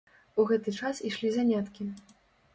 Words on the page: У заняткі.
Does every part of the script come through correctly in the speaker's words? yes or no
no